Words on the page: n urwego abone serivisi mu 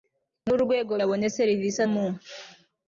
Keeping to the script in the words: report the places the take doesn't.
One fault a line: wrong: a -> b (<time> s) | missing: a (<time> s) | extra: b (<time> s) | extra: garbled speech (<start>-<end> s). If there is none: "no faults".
no faults